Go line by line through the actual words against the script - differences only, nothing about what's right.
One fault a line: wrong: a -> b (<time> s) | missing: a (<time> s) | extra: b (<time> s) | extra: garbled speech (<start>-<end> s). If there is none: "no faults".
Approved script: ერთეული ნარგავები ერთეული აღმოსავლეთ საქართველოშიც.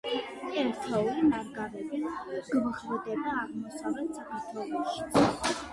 wrong: ერთეული -> გვხვდება (2.6 s)